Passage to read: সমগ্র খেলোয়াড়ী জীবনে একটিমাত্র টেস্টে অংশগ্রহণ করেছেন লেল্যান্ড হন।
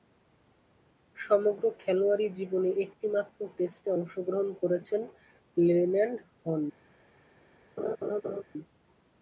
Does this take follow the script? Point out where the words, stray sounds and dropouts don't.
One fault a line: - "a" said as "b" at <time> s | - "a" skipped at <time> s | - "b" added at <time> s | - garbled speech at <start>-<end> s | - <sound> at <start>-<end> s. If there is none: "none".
- laugh at 7.8-8.4 s